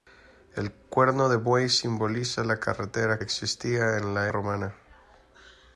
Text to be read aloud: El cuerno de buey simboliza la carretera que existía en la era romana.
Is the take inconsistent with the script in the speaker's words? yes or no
yes